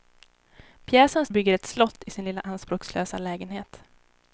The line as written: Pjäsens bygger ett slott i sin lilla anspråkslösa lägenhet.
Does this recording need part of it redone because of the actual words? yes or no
no